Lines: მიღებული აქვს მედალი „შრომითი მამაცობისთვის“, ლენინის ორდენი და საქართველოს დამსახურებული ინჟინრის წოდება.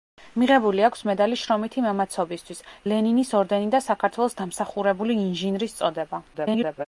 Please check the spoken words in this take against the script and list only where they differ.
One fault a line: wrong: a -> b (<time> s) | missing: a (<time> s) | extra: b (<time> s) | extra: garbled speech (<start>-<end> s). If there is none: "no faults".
extra: garbled speech (6.3-6.9 s)